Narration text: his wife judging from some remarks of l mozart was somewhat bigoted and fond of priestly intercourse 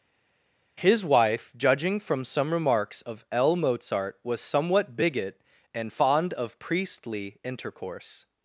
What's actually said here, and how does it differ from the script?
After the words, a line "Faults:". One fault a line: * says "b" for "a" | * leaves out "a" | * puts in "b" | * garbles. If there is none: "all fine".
his wife judging from some remarks of l mozart was somewhat bigot and fond of priestly intercourse
Faults:
* says "bigot" for "bigoted"